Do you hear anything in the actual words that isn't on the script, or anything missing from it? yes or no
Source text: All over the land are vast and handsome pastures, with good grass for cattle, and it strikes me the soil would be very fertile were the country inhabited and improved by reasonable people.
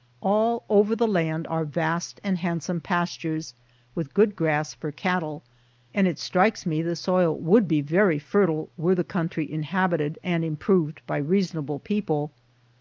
no